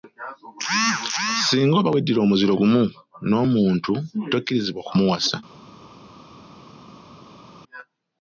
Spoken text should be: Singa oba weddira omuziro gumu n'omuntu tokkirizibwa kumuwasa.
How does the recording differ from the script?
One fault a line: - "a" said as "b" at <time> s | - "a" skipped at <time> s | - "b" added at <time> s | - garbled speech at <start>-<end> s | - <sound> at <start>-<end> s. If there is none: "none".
none